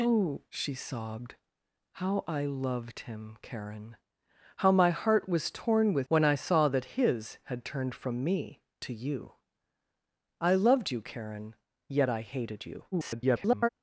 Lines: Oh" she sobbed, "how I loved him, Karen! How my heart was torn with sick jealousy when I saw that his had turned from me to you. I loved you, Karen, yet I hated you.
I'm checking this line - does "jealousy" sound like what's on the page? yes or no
no